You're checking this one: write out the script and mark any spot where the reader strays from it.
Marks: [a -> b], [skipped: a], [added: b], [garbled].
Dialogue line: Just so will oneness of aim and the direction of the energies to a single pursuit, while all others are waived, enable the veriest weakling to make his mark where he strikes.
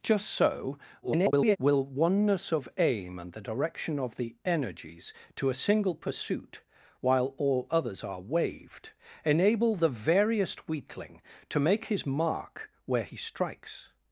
Just so [garbled] will oneness of aim and the direction of the energies to a single pursuit, while all others are waived, enable the veriest weakling to make his mark where he strikes.